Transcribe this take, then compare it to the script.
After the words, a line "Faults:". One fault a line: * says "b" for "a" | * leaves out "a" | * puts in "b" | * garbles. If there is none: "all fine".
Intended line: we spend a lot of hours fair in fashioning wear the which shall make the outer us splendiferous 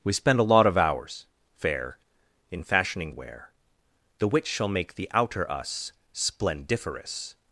we spend a lot of hours fair in fashioning wear the which shall make the outer us splendiferous
Faults:
all fine